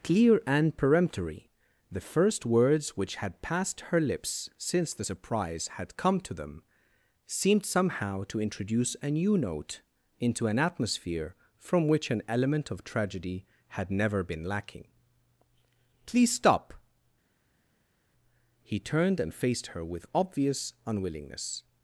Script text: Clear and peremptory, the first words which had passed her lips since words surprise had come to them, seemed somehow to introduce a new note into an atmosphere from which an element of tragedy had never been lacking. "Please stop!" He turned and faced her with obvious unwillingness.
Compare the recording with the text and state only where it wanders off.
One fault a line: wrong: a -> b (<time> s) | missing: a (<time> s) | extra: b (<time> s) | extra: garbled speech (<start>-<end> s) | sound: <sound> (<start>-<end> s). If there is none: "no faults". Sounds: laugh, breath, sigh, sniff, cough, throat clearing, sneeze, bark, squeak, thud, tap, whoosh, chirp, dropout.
wrong: words -> the (4.9 s)